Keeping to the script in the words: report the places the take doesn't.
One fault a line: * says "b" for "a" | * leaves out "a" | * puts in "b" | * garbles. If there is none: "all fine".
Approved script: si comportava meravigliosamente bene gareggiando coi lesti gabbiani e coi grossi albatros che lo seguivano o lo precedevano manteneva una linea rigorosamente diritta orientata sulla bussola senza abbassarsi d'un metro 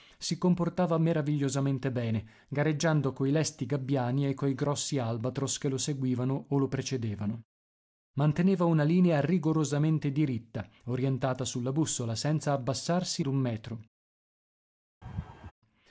all fine